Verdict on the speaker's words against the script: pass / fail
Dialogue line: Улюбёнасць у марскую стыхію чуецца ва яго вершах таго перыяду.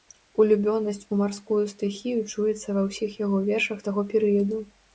fail